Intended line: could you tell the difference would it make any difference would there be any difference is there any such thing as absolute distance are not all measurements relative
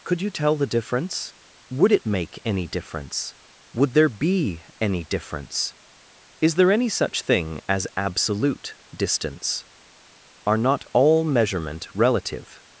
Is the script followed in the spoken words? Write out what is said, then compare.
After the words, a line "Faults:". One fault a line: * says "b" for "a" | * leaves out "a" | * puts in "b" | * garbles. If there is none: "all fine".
could you tell the difference would it make any difference would there be any difference is there any such thing as absolute distance are not all measurement relative
Faults:
* says "measurement" for "measurements"